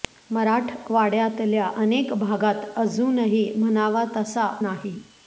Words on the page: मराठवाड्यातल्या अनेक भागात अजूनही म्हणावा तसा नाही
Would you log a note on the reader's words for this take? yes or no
no